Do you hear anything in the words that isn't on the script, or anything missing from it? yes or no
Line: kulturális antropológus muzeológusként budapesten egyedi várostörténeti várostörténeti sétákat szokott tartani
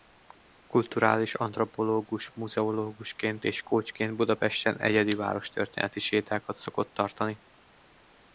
yes